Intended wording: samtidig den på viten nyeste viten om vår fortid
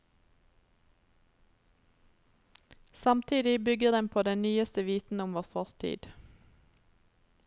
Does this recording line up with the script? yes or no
no